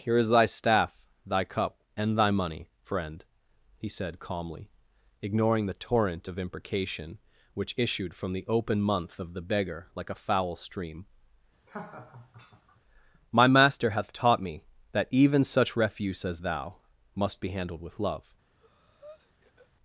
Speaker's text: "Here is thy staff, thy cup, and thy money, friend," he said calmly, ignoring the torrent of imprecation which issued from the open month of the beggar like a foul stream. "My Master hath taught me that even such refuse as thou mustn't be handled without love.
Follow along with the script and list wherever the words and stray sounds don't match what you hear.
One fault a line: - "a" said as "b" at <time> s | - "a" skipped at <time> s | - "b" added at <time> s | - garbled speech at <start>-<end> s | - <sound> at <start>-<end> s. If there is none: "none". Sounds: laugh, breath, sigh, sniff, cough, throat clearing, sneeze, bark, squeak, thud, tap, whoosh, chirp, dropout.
- laugh at 11.7-12.8 s
- "mustn't" said as "must" at 17.1 s
- "without" said as "with" at 17.8 s
- breath at 18.6-19.7 s